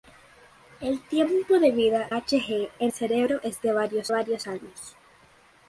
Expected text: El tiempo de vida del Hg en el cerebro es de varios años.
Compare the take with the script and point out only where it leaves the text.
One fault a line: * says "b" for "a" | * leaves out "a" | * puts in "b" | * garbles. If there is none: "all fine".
* leaves out "del"
* leaves out "el"
* puts in "varios"